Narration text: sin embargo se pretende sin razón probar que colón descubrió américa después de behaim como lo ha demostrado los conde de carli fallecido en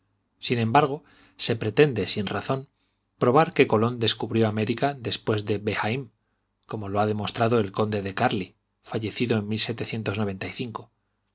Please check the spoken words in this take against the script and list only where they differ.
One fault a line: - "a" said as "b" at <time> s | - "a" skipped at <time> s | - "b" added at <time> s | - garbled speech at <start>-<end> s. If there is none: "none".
- "los" said as "el" at 7.6 s